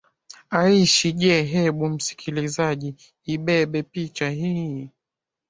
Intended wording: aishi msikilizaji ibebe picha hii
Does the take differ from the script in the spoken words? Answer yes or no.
yes